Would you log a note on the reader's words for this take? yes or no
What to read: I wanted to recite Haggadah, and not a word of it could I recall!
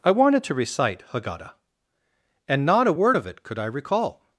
no